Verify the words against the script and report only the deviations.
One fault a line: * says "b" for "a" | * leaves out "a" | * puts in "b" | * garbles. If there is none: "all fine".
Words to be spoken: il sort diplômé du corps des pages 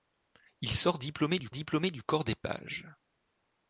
* puts in "diplômé du"